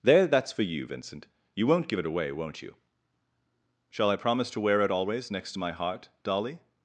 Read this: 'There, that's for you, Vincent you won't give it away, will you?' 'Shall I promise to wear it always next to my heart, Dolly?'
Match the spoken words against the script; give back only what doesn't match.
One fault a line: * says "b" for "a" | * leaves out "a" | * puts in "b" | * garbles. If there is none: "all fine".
* says "won't" for "will"